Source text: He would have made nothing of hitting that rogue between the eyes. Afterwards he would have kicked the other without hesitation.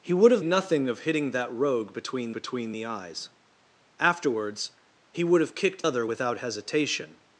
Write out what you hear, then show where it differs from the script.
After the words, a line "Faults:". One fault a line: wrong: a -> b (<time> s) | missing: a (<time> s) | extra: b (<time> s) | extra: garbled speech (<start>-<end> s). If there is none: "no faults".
He would have nothing of hitting that rogue between between the eyes. Afterwards he would have kicked other without hesitation.
Faults:
missing: made (0.4 s)
extra: between (2.3 s)
missing: the (5.8 s)